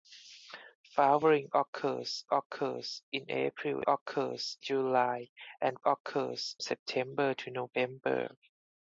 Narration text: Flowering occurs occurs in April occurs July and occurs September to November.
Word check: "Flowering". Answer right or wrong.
right